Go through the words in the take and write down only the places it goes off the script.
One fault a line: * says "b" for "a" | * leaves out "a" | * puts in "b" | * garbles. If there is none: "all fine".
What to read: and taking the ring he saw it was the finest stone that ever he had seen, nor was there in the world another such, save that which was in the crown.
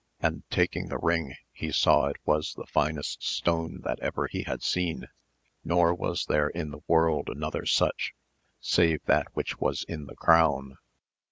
all fine